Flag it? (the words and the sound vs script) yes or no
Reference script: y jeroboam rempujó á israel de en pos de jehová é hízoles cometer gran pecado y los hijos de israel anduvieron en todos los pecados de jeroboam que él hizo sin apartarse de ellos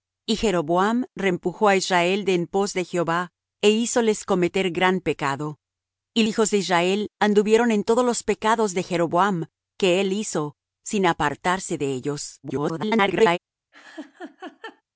yes